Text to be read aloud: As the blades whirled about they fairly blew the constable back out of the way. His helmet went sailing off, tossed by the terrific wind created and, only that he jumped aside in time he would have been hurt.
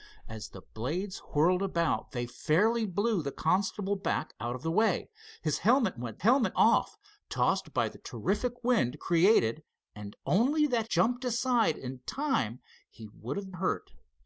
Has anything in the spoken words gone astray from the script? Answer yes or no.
yes